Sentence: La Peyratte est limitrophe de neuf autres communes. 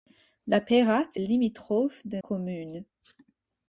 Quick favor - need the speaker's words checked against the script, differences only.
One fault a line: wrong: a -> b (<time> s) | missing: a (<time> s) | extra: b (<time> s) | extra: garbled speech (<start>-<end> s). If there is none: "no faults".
missing: est (1.1 s)
missing: neuf autres (2.2 s)